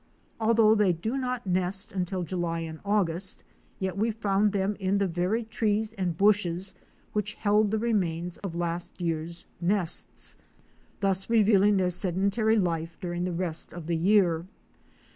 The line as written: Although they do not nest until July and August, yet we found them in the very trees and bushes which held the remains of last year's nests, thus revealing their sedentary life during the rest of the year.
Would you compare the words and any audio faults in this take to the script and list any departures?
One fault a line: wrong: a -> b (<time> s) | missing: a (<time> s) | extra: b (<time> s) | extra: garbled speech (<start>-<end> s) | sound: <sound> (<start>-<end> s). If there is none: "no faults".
sound: dropout (8.4-8.4 s)